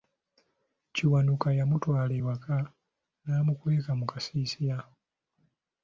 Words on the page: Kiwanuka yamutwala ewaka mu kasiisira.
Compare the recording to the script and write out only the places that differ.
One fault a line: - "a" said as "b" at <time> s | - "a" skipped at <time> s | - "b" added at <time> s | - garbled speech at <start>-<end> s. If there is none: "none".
- "n'amukweka" added at 3.3 s